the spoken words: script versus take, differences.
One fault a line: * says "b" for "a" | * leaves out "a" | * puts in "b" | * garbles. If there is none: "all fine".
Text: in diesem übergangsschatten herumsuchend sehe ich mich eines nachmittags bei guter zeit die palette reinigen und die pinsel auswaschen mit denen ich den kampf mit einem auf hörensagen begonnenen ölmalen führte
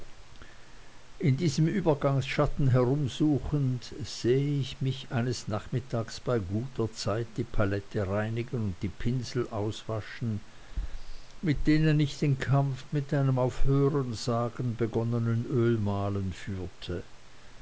all fine